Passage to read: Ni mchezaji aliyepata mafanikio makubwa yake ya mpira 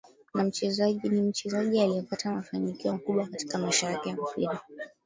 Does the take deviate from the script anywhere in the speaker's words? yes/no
yes